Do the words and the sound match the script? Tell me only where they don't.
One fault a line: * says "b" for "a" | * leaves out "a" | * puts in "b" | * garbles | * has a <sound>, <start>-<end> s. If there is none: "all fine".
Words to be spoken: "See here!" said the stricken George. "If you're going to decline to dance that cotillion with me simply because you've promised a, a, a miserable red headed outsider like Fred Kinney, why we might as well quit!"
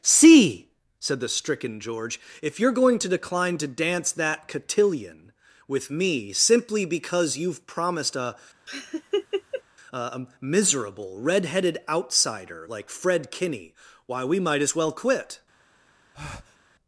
* leaves out "here"
* has a laugh, 8.7-9.6 s
* has a breath, 16.1-16.6 s